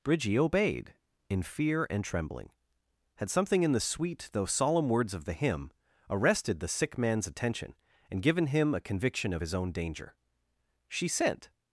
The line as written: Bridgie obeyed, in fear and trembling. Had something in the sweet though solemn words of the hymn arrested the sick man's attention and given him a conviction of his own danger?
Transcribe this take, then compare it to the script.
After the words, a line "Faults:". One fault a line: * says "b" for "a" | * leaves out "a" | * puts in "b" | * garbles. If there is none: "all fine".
Bridgie obeyed, in fear and trembling. Had something in the sweet though solemn words of the hymn arrested the sick man's attention and given him a conviction of his own danger? She sent
Faults:
* puts in "She sent"